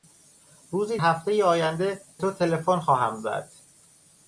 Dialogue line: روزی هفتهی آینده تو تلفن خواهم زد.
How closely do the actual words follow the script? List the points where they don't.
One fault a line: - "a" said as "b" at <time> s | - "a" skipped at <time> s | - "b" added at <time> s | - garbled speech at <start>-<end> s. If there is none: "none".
none